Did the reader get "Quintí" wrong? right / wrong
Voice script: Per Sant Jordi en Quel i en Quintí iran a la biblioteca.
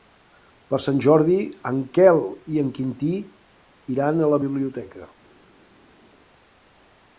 right